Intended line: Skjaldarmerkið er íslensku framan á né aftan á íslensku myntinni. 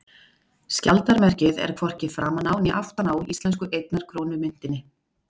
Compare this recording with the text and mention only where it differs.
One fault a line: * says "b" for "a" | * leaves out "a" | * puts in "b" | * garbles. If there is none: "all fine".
* says "hvorki" for "íslensku"
* puts in "einnar krónu"